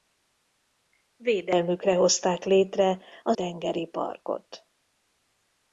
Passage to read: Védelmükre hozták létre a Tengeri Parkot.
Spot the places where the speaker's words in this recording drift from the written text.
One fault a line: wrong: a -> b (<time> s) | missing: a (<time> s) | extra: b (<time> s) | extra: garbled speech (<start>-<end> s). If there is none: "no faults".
no faults